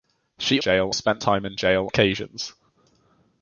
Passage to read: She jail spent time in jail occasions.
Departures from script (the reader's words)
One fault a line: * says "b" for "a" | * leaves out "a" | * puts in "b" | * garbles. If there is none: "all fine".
all fine